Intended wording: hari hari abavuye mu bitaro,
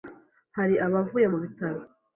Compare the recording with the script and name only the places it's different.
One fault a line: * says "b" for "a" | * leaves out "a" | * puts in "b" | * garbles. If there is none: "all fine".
* leaves out "hari"